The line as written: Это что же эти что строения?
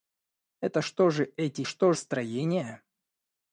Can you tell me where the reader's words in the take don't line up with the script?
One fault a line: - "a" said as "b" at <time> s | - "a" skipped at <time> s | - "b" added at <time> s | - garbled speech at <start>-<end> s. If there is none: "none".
none